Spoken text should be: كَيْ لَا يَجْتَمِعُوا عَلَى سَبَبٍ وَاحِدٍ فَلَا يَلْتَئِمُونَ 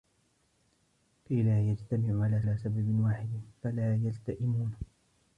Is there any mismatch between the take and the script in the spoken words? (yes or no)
yes